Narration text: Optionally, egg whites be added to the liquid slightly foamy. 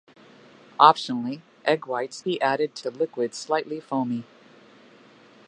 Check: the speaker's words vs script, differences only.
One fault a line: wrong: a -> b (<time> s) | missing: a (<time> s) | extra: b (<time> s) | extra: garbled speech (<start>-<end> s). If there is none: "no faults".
no faults